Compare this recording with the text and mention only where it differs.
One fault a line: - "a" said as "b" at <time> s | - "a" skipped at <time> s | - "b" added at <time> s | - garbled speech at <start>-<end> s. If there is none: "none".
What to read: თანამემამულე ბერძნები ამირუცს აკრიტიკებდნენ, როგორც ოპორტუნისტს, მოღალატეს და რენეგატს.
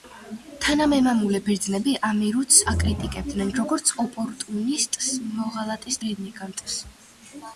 - "და" skipped at 6.0 s